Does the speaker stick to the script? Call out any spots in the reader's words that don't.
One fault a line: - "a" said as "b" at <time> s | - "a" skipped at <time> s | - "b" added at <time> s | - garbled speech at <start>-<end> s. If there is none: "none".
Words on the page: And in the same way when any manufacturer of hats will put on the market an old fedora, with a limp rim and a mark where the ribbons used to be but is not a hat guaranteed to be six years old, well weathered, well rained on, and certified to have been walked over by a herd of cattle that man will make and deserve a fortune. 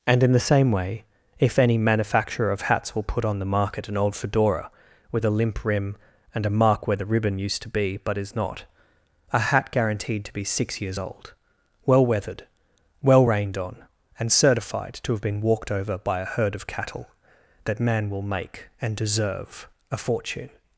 - "when" said as "if" at 1.4 s
- "ribbons" said as "ribbon" at 7.0 s